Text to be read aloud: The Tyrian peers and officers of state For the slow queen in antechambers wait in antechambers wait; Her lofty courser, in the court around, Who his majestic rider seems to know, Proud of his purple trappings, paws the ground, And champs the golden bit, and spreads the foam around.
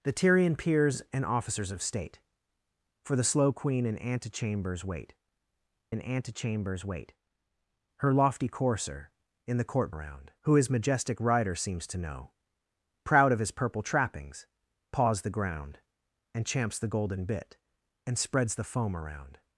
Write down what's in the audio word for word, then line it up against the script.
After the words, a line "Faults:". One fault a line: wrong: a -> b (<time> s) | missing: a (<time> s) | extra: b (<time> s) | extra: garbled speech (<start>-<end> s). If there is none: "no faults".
The Tyrian peers and officers of state For the slow queen in antechambers wait in antechambers wait; Her lofty courser, in the court around, Who his majestic rider seems to know, Proud of his purple trappings, paws the ground, And champs the golden bit, and spreads the foam around.
Faults:
no faults